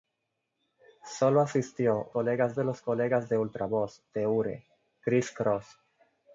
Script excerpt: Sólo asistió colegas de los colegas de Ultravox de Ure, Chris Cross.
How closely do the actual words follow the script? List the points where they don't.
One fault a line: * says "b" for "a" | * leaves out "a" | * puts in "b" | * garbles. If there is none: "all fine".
all fine